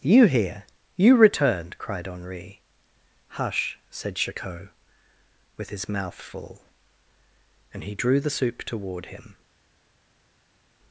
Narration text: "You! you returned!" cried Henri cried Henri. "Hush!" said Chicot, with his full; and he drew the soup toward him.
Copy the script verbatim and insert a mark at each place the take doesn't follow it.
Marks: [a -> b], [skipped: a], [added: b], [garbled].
"You! [added: here] you returned!" cried Henri [skipped: cried Henri.] "Hush!" said Chicot, with his [added: mouth] full; and he drew the soup toward him.